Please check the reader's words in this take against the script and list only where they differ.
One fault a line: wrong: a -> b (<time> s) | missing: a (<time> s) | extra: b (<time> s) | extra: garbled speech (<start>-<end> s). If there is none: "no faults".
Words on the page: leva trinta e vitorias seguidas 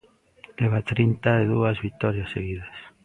extra: dúas (1.5 s)